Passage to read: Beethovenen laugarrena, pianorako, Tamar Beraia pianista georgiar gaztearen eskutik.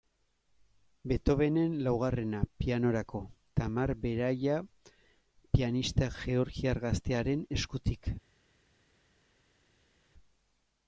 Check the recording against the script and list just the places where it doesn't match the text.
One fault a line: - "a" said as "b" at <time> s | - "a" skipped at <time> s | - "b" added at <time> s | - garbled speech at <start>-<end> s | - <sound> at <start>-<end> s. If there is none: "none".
none